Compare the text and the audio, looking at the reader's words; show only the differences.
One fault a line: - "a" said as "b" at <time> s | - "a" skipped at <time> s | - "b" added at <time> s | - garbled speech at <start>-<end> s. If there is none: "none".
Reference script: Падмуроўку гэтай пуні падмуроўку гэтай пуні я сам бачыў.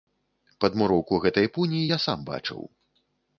- "падмуроўку гэтай пуні" skipped at 1.8 s